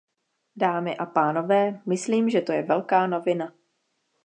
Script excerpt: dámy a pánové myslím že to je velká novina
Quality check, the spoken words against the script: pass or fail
pass